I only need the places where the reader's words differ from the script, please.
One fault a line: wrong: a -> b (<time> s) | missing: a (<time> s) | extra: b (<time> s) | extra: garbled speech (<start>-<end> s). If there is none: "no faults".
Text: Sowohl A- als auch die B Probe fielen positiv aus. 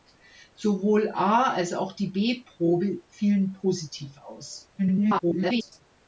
extra: garbled speech (4.8-5.8 s)